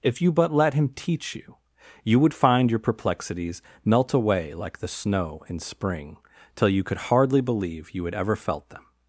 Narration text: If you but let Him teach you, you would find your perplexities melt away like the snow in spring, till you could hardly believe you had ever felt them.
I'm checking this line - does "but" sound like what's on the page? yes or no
yes